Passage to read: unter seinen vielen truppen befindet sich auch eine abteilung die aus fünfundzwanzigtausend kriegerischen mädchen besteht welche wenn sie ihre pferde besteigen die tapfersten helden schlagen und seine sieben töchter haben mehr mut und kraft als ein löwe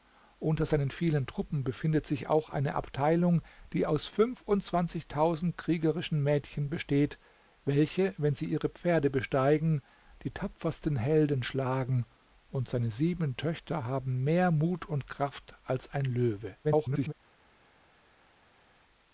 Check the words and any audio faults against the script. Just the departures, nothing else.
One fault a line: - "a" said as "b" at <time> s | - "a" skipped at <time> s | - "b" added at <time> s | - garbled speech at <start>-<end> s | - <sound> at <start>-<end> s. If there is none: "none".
- garbled speech at 16.6-17.1 s